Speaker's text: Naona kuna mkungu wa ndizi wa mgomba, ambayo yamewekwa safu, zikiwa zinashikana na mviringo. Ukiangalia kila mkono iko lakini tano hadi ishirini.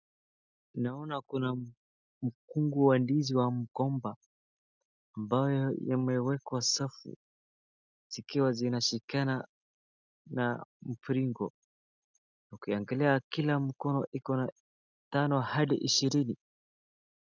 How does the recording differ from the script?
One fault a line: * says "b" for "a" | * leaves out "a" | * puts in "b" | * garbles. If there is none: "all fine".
* says "na" for "lakini"